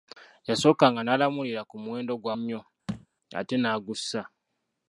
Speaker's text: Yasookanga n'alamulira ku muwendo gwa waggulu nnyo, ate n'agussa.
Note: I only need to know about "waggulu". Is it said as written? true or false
false